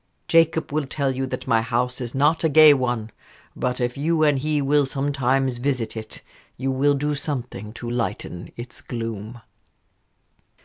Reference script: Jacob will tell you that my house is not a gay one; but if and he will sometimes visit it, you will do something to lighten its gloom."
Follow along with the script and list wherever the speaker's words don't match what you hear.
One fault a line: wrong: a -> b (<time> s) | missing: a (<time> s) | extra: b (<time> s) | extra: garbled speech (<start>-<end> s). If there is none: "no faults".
extra: you (4.0 s)